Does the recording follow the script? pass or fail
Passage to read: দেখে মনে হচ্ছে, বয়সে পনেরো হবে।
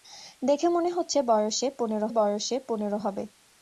fail